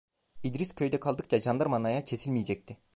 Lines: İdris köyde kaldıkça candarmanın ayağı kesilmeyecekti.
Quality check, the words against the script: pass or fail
pass